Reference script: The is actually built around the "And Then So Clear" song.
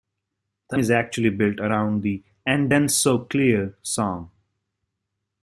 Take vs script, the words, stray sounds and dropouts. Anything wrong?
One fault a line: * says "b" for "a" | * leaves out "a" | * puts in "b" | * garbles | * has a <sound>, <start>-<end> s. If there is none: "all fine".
all fine